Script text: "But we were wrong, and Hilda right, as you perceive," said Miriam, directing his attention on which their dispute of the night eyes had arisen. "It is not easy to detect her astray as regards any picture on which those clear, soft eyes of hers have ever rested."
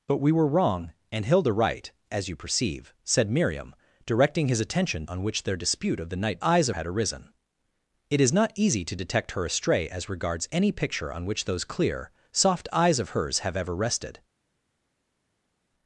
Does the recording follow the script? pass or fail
pass